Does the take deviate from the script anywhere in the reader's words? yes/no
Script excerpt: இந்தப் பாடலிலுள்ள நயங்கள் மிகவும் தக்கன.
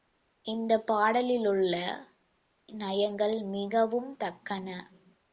no